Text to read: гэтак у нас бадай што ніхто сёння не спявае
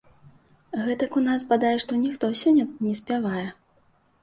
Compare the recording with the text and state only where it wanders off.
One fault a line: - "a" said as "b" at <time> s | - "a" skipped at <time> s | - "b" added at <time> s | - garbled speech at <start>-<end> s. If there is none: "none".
none